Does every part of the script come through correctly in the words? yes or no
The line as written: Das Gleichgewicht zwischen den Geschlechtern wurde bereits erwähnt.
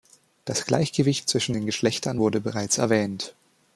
yes